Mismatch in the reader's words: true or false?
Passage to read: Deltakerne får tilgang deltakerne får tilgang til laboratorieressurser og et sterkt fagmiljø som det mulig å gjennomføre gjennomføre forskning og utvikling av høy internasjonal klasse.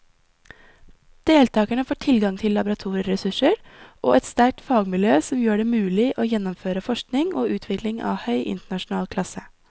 true